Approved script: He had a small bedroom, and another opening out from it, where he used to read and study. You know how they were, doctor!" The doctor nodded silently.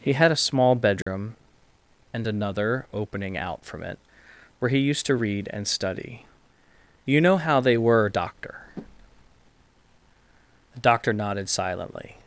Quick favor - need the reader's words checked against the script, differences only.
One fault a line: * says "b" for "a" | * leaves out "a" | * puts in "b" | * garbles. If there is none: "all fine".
all fine